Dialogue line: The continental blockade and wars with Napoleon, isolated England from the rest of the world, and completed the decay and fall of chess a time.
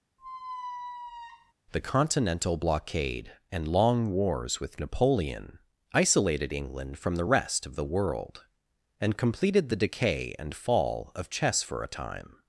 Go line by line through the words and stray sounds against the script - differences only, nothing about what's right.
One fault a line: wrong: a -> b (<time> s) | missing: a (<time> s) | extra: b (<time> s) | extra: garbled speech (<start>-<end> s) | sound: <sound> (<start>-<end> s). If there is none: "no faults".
sound: squeak (0.2-1.5 s)
extra: long (3.7 s)
extra: for (11.6 s)